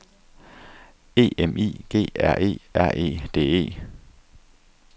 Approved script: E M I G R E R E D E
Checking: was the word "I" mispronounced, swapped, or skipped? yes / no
no